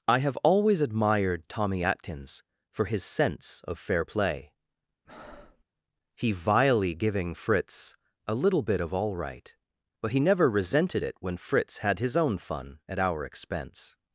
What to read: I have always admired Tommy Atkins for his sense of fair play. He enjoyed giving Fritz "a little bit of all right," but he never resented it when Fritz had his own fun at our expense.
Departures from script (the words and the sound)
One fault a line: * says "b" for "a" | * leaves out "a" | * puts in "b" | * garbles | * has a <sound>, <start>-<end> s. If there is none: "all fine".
* has a breath, 5.1-5.6 s
* says "vilely" for "enjoyed"